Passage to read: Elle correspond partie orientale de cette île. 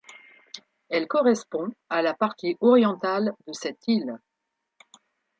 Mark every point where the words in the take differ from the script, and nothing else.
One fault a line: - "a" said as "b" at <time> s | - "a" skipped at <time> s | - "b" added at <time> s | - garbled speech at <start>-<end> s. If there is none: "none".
- "à la" added at 1.9 s